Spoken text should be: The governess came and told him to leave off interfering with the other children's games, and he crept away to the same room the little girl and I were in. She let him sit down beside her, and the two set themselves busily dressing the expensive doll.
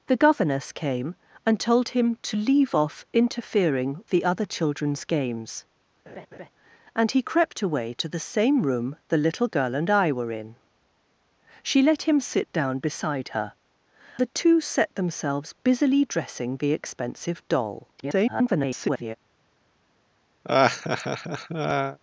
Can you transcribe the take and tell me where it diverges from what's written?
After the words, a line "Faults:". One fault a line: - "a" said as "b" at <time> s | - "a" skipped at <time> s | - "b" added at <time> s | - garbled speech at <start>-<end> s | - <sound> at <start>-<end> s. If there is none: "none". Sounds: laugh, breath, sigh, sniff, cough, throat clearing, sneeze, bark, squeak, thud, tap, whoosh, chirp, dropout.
The governess came and told him to leave off interfering the other children's games, and he crept away to the same room the little girl and I were in. She let him sit down beside her, the two set themselves busily dressing the expensive doll. [garbled]
Faults:
- "with" skipped at 4.0 s
- laugh at 6.1-6.5 s
- "and" skipped at 13.5 s
- garbled speech at 18.0-19.1 s
- laugh at 20.4-22.0 s